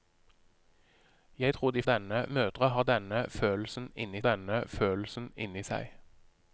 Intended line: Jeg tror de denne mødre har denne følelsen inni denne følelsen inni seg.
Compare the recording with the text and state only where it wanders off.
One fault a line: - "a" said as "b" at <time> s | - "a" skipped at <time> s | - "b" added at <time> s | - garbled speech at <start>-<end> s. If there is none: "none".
none